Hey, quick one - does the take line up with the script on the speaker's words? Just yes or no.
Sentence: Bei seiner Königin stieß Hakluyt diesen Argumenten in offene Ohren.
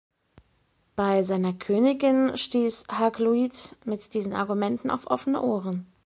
no